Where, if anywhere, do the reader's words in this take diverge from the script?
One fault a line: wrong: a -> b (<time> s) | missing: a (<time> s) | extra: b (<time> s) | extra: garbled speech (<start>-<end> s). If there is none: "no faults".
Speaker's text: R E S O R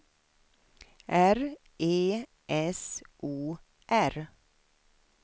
no faults